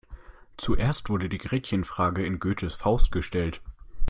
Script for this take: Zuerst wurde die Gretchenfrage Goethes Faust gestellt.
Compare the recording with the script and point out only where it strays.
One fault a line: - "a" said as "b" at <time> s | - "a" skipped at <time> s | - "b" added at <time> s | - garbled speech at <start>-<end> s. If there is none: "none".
- "in" added at 2.2 s